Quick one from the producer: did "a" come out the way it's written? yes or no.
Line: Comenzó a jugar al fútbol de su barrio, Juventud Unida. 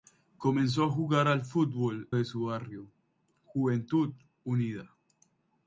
yes